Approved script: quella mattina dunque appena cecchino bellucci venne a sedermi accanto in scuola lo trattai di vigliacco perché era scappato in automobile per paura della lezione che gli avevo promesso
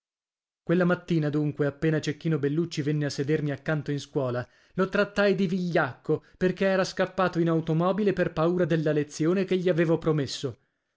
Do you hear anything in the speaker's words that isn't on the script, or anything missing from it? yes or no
no